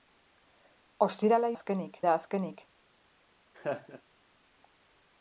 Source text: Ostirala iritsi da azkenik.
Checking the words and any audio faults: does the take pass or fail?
fail